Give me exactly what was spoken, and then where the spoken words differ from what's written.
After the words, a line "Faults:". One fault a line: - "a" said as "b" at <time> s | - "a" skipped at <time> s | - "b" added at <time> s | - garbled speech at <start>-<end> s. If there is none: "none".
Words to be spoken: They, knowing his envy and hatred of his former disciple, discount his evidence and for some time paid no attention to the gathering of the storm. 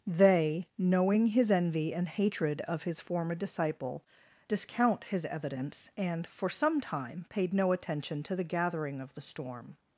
They, knowing his envy and hatred of his former disciple, discount his evidence and for some time paid no attention to the gathering of the storm.
Faults:
none